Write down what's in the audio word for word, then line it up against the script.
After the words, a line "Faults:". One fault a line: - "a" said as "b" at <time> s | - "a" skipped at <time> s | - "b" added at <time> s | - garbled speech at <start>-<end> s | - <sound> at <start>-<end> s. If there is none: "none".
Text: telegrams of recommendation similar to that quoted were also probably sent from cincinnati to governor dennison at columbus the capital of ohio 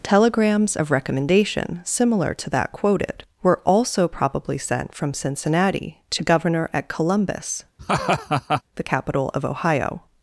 telegrams of recommendation similar to that quoted were also probably sent from cincinnati to governor at columbus the capital of ohio
Faults:
- "dennison" skipped at 6.7 s
- laugh at 7.8-8.6 s